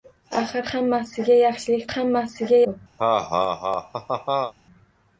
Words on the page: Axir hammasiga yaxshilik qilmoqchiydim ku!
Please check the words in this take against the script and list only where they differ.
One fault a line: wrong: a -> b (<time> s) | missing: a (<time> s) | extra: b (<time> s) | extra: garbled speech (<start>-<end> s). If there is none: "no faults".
wrong: qilmoqchiydim -> hammasiga (1.9 s)